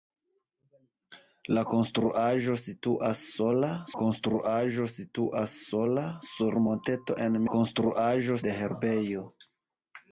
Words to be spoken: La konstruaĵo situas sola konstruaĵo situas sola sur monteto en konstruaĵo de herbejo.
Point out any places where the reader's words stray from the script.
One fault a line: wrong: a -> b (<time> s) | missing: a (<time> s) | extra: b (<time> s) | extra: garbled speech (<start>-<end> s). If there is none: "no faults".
no faults